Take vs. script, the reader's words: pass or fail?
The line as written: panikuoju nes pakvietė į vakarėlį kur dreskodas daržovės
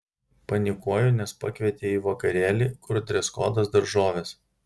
pass